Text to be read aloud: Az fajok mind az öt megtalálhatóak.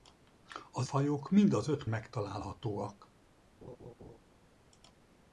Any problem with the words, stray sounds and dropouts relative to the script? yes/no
yes